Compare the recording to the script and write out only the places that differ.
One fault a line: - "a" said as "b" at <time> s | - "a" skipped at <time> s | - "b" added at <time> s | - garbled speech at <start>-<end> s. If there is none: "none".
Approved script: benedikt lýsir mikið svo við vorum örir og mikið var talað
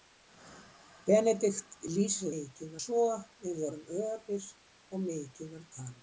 none